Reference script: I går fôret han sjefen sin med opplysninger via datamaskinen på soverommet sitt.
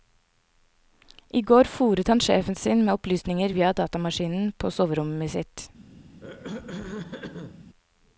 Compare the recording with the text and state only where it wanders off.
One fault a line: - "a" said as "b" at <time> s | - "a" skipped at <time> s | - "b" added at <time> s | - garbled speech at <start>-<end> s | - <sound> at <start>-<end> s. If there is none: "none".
- throat clearing at 6.2-7.7 s